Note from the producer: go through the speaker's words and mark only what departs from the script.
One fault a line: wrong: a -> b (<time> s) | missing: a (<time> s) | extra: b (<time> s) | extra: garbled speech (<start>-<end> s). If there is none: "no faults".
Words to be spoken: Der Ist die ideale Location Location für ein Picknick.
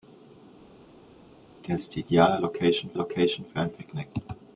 no faults